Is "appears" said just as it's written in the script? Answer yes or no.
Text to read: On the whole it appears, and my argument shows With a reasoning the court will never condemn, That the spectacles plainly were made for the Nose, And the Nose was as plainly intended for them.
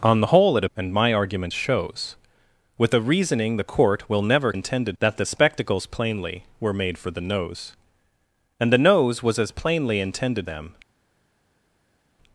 no